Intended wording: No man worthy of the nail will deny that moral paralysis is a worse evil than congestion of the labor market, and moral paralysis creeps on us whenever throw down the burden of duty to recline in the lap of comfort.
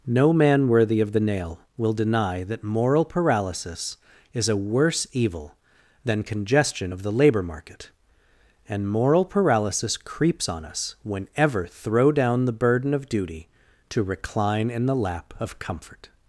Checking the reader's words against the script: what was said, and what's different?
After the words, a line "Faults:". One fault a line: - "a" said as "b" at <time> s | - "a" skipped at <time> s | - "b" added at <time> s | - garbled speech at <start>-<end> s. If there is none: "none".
No man worthy of the nail will deny that moral paralysis is a worse evil than congestion of the labor market, and moral paralysis creeps on us whenever throw down the burden of duty to recline in the lap of comfort.
Faults:
none